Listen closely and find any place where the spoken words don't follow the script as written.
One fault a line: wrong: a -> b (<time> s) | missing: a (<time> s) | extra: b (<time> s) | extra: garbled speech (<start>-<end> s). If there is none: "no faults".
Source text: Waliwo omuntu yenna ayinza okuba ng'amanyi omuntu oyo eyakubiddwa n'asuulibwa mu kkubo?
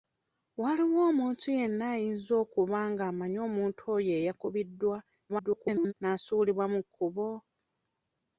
extra: garbled speech (5.3-5.9 s)